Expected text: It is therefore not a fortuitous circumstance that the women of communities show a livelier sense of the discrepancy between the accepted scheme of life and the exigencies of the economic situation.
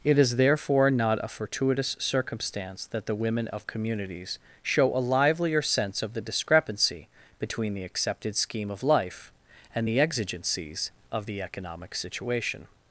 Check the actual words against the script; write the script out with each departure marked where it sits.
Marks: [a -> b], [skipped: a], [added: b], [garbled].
It is therefore not a fortuitous circumstance that the women of communities show a livelier sense of the discrepancy between the accepted scheme of life and the exigencies of the economic situation.